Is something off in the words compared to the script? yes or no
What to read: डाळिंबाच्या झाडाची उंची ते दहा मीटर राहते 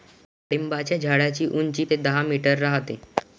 no